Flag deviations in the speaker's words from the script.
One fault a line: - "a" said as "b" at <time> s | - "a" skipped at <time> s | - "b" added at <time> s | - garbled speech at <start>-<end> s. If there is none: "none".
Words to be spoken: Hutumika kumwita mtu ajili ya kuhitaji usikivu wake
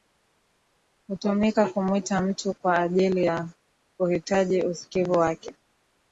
- "kwa" added at 2.5 s